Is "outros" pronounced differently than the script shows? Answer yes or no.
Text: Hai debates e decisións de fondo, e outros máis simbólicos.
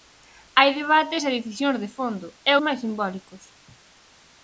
yes